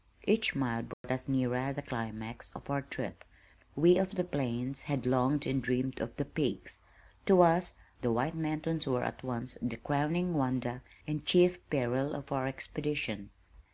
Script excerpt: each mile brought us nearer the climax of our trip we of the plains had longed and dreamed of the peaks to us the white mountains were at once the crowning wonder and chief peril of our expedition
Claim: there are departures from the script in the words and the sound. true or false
true